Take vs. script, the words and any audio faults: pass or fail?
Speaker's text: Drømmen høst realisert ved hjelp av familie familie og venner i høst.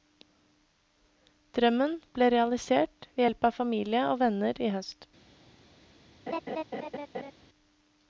fail